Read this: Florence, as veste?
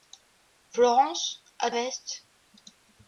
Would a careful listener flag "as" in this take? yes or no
no